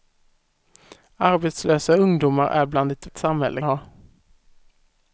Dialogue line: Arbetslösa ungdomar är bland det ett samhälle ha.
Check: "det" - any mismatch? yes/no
no